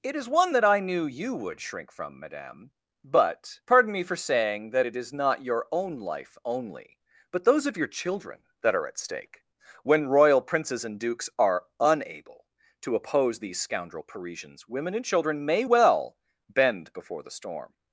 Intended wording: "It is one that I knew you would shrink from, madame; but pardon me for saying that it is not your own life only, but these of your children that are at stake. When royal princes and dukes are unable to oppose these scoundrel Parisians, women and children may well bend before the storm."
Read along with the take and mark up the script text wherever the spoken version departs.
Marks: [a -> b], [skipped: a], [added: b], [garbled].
"It is one that I knew you would shrink from, madame; but pardon me for saying that it is not your own life only, but [these -> those] of your children that are at stake. When royal princes and dukes are unable to oppose these scoundrel Parisians, women and children may well bend before the storm."